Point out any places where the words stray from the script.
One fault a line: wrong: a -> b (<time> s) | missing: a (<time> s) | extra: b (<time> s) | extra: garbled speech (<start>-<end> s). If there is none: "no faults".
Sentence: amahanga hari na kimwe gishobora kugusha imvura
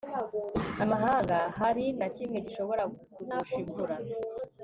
no faults